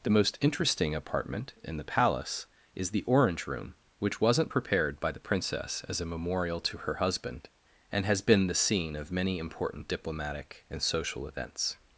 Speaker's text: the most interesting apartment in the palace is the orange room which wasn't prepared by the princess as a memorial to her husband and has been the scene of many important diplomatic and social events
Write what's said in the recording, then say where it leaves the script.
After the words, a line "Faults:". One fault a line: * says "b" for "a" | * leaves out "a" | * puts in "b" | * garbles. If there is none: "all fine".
the most interesting apartment in the palace is the orange room which wasn't prepared by the princess as a memorial to her husband and has been the scene of many important diplomatic and social events
Faults:
all fine